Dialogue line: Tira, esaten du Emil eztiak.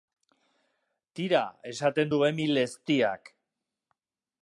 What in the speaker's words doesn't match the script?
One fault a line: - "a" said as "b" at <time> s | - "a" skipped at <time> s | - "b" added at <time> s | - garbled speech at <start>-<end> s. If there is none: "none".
none